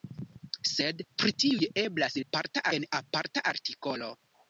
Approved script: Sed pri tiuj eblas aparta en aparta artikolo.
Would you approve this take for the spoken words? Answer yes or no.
yes